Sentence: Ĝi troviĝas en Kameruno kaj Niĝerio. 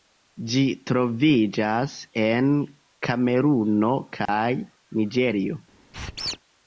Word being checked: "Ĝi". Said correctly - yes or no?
yes